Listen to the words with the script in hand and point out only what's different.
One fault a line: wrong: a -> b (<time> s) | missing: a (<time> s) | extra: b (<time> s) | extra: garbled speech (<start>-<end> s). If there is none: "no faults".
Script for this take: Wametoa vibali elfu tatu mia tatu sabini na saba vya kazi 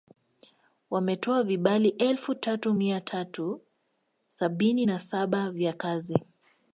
no faults